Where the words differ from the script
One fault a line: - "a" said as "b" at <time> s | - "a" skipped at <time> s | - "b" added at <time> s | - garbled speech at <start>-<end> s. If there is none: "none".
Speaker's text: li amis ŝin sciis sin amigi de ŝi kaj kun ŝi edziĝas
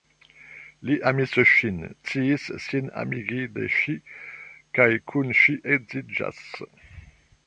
none